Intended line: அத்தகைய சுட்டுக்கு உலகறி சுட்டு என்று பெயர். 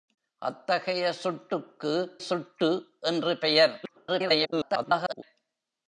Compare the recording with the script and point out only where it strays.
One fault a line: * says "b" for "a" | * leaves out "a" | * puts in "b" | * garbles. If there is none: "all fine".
* leaves out "உலகறி"
* garbles